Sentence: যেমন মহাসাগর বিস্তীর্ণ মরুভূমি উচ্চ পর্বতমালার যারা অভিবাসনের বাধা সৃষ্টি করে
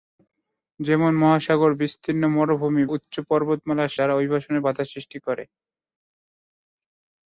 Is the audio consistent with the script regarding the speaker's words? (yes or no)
yes